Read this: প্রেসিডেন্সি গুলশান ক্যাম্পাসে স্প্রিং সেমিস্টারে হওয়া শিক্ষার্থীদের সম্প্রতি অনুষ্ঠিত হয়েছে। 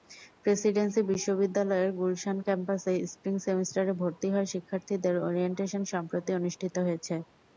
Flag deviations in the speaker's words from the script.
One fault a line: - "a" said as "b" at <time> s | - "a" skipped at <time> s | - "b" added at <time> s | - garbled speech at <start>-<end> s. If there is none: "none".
- "বিশ্ববিদ্যালয়ের" added at 1.1 s
- "ভর্তি" added at 4.0 s
- "ওরিয়েন্টেশন" added at 5.3 s